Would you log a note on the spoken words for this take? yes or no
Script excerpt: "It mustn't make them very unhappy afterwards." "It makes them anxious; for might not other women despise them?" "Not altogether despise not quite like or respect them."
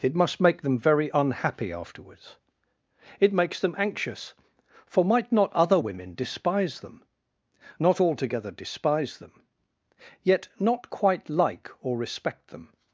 yes